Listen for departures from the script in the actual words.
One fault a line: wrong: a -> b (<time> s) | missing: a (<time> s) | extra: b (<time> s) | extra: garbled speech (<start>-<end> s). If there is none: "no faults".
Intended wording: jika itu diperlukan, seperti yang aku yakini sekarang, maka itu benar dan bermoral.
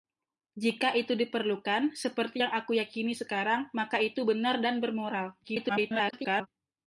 extra: garbled speech (5.4-6.5 s)